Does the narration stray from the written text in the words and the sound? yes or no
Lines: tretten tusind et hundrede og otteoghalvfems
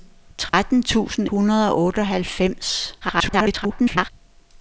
yes